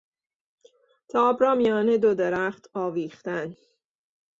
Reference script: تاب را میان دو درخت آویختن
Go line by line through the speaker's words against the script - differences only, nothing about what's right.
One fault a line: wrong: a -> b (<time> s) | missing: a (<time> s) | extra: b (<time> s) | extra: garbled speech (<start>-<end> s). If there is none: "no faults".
no faults